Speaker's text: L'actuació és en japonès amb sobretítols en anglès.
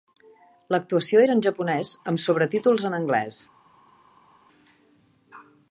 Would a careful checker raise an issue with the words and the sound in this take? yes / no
yes